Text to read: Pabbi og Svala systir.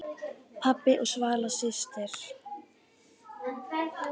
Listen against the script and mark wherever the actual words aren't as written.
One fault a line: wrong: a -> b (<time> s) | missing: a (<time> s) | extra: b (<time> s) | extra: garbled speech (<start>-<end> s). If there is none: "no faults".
no faults